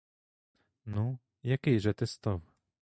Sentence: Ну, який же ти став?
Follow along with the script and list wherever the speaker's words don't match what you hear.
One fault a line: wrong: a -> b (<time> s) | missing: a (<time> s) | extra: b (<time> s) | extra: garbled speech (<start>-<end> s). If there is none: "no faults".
no faults